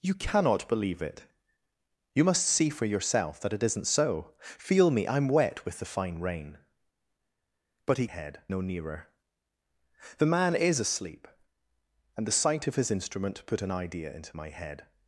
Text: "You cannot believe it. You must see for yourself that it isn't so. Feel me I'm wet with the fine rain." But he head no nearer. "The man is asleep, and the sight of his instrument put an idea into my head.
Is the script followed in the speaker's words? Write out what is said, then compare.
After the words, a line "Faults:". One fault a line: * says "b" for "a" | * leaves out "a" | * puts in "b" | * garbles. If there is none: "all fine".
"You cannot believe it. You must see for yourself that it isn't so. Feel me I'm wet with the fine rain." But he head no nearer. "The man is asleep, and the sight of his instrument put an idea into my head.
Faults:
all fine